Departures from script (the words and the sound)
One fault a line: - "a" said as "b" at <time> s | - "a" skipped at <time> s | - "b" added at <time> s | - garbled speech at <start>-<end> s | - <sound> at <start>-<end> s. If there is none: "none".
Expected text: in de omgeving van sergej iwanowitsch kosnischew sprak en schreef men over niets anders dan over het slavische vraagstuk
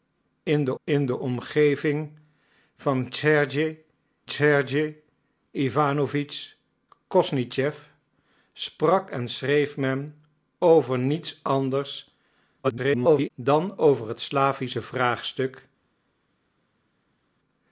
- "in de" added at 0.8 s
- "sergej" added at 4.3 s
- garbled speech at 12.6-13.3 s